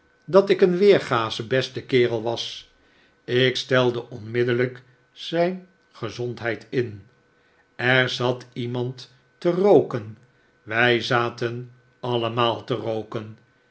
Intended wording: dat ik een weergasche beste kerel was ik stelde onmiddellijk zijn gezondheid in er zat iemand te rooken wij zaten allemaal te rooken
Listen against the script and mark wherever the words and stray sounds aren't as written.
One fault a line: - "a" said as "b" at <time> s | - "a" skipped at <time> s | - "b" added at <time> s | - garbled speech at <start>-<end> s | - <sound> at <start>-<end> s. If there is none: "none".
none